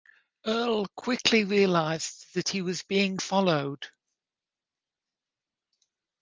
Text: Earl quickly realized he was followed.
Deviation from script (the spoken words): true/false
true